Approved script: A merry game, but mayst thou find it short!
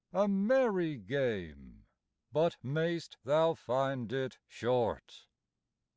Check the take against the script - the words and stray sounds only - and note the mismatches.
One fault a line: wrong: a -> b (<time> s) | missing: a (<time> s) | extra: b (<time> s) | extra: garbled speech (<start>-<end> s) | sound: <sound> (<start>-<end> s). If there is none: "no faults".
no faults